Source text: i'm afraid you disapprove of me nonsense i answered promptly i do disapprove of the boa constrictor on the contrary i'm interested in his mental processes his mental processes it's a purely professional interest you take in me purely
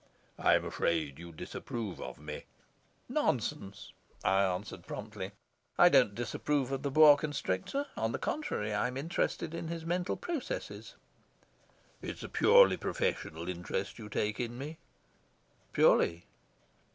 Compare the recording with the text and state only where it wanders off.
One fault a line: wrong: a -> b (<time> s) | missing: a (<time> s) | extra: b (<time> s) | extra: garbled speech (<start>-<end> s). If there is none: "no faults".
wrong: do -> don't (5.9 s)
missing: his mental processes (10.9 s)